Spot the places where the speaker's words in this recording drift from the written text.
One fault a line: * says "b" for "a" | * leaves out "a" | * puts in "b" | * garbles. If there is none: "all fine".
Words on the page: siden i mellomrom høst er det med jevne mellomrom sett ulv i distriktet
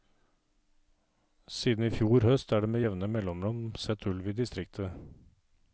* says "fjor" for "mellomrom"